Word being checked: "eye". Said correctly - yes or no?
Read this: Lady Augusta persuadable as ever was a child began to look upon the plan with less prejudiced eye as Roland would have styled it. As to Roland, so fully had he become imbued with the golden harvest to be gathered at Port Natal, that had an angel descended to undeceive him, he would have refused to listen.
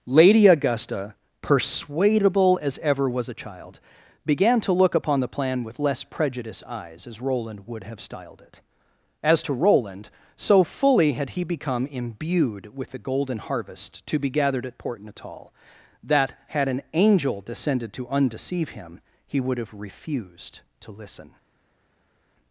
no